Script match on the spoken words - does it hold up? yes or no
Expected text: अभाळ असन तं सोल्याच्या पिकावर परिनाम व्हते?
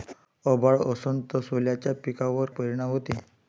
yes